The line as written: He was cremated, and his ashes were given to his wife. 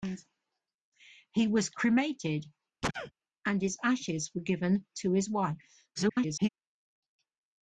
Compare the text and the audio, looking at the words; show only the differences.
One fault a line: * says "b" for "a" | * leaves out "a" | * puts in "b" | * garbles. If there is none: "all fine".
* garbles